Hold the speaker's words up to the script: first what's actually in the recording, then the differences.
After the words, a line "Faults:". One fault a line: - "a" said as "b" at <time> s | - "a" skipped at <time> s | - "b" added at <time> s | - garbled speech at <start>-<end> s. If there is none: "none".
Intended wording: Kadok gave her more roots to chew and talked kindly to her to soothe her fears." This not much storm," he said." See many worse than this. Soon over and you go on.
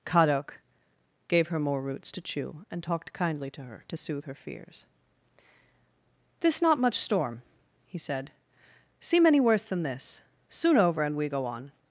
Kadok gave her more roots to chew and talked kindly to her to soothe her fears." This not much storm," he said." See many worse than this. Soon over and we go on.
Faults:
- "you" said as "we" at 11.2 s